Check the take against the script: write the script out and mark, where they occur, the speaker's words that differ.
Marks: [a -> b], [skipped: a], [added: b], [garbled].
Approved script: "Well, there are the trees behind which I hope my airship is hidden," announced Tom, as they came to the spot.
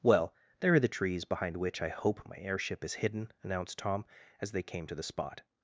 "Well, there are the trees behind which I hope my airship is hidden," announced Tom, as they came to the spot.